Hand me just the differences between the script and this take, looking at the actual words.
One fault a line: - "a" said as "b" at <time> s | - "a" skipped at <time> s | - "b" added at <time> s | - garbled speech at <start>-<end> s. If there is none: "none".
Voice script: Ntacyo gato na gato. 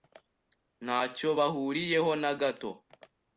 - "gato" said as "bahuriyeho" at 1.4 s